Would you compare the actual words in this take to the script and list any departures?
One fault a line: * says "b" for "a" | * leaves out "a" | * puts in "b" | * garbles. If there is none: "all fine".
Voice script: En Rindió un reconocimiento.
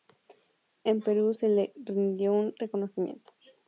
* puts in "Perú se le"